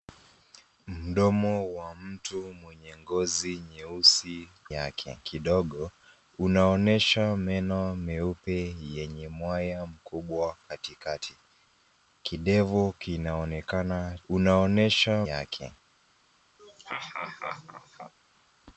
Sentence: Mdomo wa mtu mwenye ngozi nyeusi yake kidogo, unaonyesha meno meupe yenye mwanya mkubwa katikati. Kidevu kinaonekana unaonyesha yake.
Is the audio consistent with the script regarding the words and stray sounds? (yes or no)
no